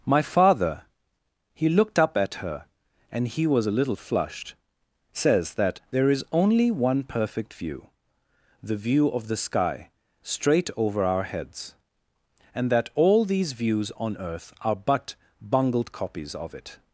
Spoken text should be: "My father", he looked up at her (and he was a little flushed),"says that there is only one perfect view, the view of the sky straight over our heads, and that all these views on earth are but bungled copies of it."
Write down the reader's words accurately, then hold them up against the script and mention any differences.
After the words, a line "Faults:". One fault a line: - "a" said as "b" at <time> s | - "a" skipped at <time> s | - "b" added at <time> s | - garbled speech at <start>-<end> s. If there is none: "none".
"My father", he looked up at her (and he was a little flushed),"says that there is only one perfect view, the view of the sky straight over our heads, and that all these views on earth are but bungled copies of it."
Faults:
none